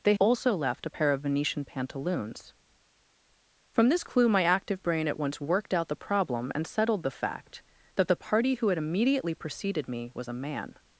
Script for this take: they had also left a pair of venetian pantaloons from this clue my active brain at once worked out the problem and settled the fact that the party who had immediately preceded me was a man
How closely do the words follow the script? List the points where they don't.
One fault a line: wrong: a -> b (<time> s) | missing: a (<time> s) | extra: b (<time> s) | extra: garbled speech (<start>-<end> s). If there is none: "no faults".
missing: had (0.1 s)